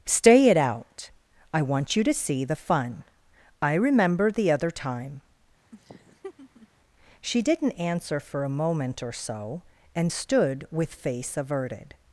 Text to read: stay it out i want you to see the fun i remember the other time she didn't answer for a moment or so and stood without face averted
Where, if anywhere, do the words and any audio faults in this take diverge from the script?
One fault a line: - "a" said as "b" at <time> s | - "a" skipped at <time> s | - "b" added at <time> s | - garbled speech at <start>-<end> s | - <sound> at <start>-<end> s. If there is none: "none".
- laugh at 5.7-6.7 s
- "without" said as "with" at 10.7 s